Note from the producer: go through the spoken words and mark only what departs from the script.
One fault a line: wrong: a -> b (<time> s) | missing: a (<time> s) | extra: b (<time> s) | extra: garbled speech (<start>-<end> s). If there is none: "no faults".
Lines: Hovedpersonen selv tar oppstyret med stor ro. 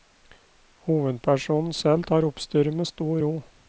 no faults